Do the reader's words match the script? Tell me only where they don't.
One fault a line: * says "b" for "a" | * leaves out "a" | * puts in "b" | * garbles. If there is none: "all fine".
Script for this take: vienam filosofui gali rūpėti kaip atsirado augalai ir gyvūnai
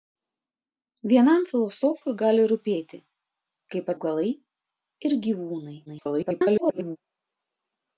* leaves out "atsirado"
* garbles